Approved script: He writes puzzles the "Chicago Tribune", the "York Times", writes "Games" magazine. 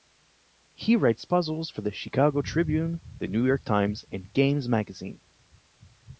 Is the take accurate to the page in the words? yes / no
no